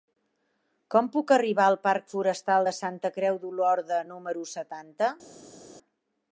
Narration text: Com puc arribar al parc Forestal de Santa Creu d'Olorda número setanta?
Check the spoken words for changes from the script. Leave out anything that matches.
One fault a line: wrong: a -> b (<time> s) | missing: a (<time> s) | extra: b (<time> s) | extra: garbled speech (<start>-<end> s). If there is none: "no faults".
no faults